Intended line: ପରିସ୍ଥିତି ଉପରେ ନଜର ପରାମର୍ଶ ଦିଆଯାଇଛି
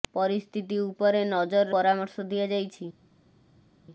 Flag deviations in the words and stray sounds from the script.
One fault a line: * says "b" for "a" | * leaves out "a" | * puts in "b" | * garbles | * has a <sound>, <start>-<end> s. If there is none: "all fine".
all fine